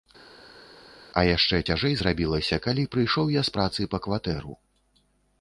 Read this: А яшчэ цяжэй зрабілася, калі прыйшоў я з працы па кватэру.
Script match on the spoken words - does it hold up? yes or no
yes